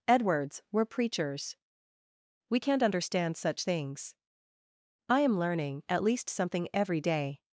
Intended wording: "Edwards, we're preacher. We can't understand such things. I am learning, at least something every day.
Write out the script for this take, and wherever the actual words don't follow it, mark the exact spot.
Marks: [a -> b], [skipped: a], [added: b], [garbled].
"Edwards, we're [preacher. -> preachers] We can't understand such things. I am learning, at least something every day.